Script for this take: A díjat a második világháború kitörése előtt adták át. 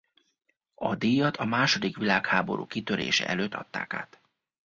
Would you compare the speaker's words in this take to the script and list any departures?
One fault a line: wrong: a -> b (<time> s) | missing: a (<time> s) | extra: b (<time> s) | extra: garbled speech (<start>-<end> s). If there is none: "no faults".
no faults